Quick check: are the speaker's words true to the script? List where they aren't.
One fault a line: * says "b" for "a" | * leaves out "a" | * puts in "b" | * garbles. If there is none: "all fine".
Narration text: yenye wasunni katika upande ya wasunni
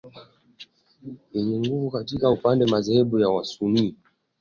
* says "nguvu" for "wasunni"
* puts in "madhehebu"